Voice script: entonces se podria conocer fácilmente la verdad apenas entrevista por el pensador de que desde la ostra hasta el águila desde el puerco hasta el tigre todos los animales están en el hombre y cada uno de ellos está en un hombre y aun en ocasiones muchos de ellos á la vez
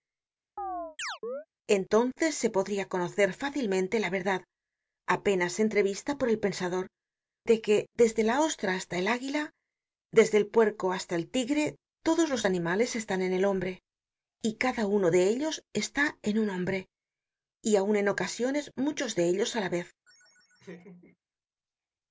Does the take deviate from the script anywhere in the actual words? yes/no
no